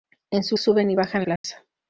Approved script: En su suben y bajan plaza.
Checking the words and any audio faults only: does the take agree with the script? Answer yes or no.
no